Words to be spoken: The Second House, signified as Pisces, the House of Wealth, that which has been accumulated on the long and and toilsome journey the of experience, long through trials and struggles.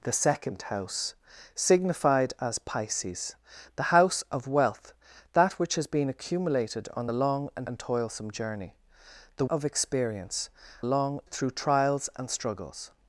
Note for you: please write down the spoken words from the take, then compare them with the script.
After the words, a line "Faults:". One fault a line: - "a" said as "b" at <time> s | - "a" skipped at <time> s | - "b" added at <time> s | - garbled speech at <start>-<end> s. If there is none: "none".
The Second House, signified as Pisces, the House of Wealth, that which has been accumulated on the long and and toilsome journey the of experience, long through trials and struggles.
Faults:
none